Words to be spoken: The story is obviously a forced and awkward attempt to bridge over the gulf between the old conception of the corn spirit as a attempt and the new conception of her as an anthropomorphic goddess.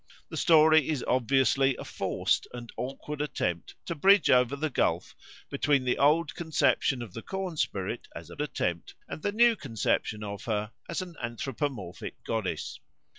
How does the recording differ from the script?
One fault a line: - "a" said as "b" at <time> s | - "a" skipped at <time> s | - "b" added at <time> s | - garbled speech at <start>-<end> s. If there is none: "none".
none